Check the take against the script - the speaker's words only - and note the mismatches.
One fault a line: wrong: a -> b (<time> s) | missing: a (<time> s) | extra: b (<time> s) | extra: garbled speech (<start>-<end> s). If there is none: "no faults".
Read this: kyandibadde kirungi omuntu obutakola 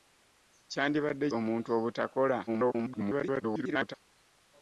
missing: kirungi (1.3 s)
extra: garbled speech (2.5-3.9 s)